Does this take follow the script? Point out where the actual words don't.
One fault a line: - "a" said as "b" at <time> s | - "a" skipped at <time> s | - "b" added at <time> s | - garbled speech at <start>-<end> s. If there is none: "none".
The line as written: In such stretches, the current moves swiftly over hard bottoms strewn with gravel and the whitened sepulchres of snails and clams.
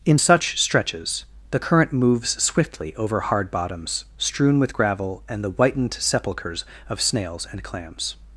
none